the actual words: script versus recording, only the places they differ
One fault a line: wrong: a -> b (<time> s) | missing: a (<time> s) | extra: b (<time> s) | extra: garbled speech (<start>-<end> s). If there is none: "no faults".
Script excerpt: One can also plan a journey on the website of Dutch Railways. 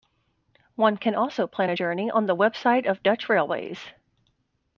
no faults